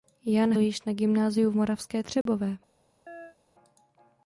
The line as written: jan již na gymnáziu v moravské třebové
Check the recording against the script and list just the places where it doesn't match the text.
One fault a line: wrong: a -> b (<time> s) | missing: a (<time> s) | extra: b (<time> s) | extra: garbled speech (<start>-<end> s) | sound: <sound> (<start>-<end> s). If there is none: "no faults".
sound: dropout (2.2-2.3 s)
sound: chirp (3.1-3.4 s)